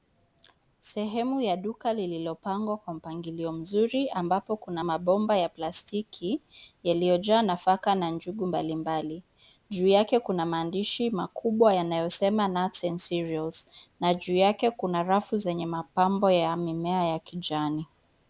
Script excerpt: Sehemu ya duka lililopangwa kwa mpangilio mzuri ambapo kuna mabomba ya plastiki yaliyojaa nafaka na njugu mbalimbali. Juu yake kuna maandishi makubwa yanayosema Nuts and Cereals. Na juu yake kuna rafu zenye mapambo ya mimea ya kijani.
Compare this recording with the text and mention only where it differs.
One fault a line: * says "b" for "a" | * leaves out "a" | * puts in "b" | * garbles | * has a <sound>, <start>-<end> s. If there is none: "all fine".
all fine